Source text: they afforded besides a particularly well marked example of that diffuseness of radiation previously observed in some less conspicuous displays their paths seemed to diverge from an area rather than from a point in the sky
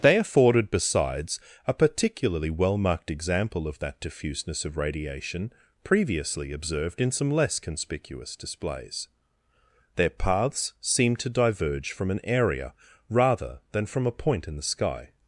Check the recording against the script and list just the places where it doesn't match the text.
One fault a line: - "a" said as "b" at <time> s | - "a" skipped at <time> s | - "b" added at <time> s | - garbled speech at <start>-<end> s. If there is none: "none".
none